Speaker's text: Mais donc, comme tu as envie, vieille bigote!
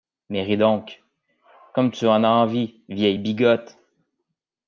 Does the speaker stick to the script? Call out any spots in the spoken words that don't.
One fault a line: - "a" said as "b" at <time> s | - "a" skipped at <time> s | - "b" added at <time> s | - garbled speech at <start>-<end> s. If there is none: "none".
- "ris" added at 0.4 s
- "en" added at 2.1 s